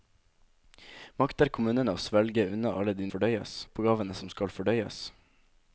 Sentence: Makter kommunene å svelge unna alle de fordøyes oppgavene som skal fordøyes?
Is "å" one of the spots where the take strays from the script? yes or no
no